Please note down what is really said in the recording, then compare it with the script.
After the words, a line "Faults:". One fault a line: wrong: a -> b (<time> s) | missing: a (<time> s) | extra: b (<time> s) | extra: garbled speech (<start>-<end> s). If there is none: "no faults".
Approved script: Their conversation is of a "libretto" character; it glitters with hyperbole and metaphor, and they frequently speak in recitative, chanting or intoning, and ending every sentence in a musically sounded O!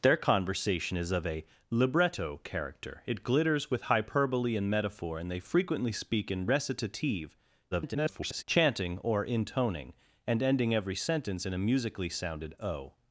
Their conversation is of a "libretto" character; it glitters with hyperbole and metaphor, and they frequently speak in recitative, [garbled] chanting or intoning, and ending every sentence in a musically sounded O!
Faults:
extra: garbled speech (7.7-8.4 s)